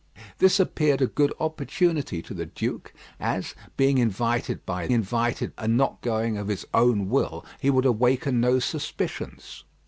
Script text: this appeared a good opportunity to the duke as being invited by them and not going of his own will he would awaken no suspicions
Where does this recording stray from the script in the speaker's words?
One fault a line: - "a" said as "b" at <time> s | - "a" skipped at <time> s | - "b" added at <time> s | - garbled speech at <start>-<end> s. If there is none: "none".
- "them" said as "invited" at 4.9 s